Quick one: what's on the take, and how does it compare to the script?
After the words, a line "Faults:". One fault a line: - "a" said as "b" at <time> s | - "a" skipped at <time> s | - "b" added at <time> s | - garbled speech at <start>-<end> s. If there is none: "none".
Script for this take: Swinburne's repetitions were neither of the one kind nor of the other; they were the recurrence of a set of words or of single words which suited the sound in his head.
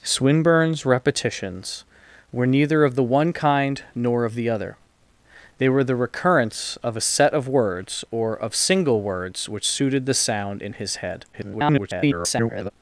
Swinburne's repetitions were neither of the one kind nor of the other; they were the recurrence of a set of words or of single words which suited the sound in his head. [garbled]
Faults:
- garbled speech at 11.3-12.7 s